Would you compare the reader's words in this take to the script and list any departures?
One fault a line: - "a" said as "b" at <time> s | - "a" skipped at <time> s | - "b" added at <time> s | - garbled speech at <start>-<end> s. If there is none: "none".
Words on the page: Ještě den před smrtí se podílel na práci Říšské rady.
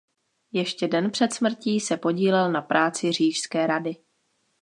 none